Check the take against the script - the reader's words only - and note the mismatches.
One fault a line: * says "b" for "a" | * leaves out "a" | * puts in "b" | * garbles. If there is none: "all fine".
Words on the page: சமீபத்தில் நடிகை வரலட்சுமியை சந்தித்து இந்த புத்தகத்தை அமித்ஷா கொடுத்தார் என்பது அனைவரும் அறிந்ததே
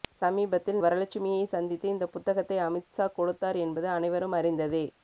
* leaves out "நடிகை"